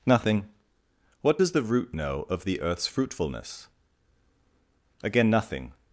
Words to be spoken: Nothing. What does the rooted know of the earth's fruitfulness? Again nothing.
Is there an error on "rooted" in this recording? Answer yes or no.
yes